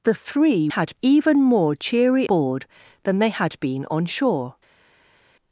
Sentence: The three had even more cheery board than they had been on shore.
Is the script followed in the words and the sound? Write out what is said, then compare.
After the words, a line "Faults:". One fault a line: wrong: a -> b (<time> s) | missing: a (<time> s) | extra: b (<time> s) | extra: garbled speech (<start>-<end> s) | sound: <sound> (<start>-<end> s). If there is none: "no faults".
The three had even more cheery board than they had been on shore.
Faults:
no faults